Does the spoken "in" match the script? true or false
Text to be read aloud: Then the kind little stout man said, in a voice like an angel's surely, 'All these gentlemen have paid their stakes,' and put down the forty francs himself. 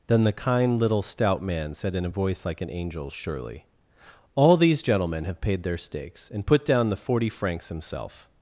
true